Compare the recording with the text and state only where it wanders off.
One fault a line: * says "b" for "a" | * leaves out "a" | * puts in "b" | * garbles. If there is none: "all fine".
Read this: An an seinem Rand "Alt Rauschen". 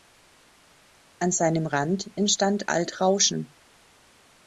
* leaves out "an"
* puts in "entstand"